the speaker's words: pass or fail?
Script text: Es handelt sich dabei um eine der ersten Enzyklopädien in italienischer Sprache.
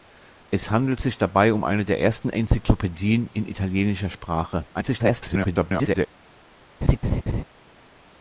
fail